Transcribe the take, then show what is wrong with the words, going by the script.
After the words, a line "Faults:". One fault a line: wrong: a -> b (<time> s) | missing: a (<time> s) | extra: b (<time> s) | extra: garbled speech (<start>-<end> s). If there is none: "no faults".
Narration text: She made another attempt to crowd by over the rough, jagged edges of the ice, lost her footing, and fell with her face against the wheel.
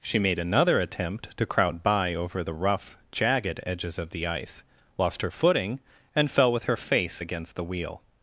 She made another attempt to crowd by over the rough, jagged edges of the ice, lost her footing, and fell with her face against the wheel.
Faults:
no faults